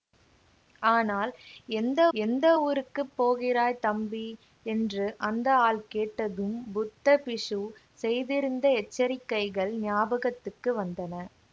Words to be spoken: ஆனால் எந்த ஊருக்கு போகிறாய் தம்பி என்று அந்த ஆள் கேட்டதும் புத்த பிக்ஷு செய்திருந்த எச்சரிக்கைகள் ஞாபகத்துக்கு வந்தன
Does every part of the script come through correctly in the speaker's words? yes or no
no